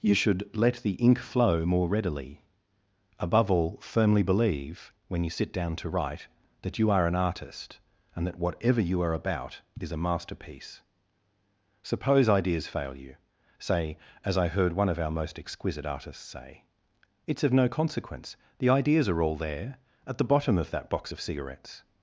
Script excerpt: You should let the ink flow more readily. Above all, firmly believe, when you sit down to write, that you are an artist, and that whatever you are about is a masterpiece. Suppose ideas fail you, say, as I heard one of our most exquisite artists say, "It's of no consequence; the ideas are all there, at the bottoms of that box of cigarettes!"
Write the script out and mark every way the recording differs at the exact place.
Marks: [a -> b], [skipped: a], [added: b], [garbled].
You should let the ink flow more readily. Above all, firmly believe, when you sit down to write, that you are an artist, and that whatever you are about is a masterpiece. Suppose ideas fail you, say, as I heard one of our most exquisite artists say, "It's of no consequence; the ideas are all there, at the [bottoms -> bottom] of that box of cigarettes!"